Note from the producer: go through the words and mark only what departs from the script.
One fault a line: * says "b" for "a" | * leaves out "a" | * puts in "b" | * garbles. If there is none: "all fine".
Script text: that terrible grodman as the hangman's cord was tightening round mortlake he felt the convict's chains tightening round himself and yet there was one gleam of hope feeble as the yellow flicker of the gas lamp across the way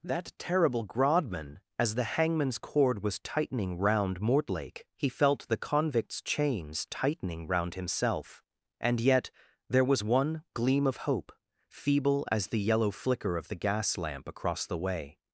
all fine